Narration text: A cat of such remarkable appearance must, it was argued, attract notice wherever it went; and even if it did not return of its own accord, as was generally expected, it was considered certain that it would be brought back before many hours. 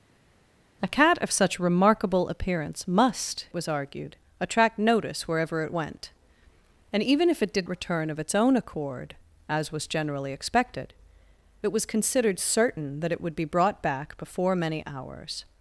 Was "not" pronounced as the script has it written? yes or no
no